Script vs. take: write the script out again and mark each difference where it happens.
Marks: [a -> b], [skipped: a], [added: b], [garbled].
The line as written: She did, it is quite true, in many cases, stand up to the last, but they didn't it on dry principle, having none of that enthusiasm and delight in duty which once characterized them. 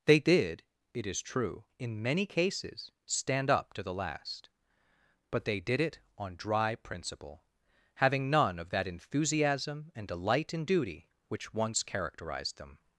[She -> They] did, it is [skipped: quite] true, in many cases, stand up to the last, but they [didn't -> did] it on dry principle, having none of that enthusiasm and delight in duty which once characterized them.